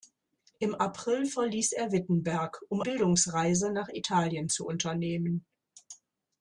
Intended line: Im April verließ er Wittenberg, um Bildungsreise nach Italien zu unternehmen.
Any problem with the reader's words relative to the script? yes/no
no